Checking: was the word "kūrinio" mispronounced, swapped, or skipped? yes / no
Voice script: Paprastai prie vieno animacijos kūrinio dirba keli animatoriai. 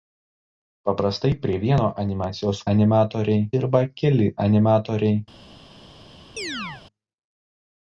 yes